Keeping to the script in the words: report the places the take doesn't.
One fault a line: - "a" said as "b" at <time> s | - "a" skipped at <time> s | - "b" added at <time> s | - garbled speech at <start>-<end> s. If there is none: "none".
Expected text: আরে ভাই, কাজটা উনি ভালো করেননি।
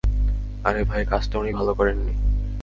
none